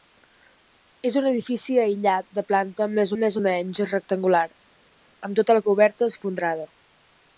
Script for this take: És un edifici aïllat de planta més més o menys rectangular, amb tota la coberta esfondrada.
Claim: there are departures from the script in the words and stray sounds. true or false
false